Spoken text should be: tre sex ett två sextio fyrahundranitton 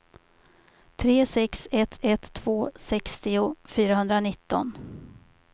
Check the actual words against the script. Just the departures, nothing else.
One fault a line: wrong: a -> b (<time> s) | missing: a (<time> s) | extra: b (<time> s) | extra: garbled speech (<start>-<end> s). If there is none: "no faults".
extra: ett (2.0 s)